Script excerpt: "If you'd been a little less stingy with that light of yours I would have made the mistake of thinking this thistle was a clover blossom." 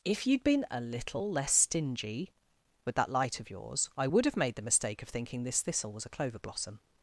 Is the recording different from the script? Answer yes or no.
no